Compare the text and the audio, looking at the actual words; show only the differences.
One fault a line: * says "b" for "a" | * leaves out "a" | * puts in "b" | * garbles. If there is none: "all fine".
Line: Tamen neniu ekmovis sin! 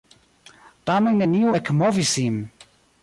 all fine